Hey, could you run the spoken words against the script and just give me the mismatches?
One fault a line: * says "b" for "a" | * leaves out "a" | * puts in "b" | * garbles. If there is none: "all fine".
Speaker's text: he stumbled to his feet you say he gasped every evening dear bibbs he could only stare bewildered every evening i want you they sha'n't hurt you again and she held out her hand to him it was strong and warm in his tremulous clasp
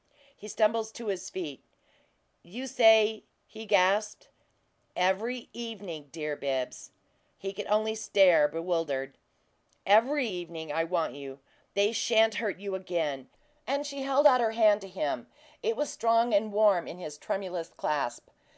all fine